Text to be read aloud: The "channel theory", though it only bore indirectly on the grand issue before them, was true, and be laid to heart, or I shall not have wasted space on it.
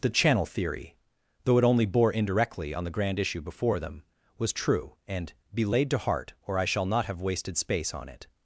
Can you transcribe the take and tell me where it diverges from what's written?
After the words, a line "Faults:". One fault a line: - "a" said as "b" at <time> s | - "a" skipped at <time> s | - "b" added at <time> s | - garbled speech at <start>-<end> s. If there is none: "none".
The "channel theory", though it only bore indirectly on the grand issue before them, was true, and be laid to heart, or I shall not have wasted space on it.
Faults:
none